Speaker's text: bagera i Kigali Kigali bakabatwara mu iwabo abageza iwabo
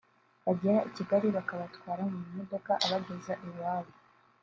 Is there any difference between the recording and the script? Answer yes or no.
yes